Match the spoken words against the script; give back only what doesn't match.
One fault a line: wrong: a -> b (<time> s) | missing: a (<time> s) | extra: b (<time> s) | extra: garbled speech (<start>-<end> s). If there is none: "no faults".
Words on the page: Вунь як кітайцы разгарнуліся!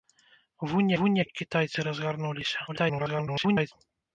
extra: вунь (1.0 s)
extra: garbled speech (2.7-3.7 s)